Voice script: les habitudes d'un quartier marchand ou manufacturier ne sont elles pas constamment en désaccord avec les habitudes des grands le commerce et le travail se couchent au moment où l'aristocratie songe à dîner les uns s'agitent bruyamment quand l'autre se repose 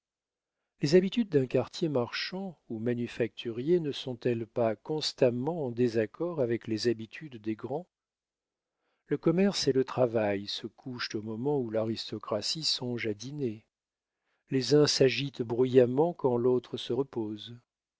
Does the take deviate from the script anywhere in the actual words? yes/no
no